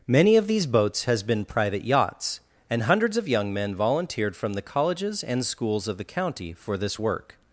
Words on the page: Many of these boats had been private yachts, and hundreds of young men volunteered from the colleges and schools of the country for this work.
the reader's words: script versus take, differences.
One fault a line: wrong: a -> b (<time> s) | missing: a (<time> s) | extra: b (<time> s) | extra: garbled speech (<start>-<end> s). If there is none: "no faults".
wrong: had -> has (1.0 s)
wrong: country -> county (6.0 s)